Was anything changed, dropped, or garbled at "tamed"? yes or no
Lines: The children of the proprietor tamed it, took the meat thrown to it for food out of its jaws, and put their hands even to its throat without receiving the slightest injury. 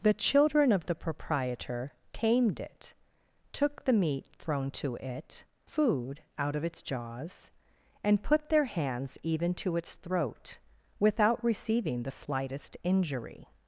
no